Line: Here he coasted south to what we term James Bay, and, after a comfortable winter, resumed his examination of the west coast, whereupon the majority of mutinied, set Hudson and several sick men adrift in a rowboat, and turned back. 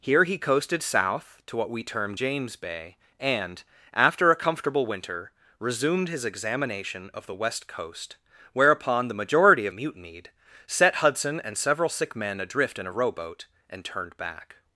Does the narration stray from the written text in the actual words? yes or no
no